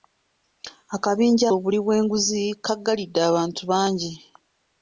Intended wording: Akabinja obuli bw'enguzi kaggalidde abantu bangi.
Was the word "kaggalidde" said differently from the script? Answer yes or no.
no